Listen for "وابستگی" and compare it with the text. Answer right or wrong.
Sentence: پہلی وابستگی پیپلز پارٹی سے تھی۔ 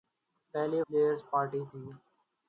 wrong